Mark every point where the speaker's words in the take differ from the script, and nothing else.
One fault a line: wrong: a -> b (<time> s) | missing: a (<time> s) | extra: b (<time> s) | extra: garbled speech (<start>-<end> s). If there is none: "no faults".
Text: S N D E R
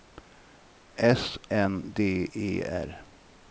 no faults